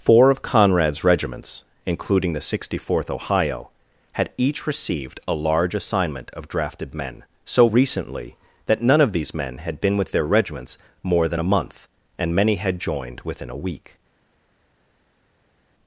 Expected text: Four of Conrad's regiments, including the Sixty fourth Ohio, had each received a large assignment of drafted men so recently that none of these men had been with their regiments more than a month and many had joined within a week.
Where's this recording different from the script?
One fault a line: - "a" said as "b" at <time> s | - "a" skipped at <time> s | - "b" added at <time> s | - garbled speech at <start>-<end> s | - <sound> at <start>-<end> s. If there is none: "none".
none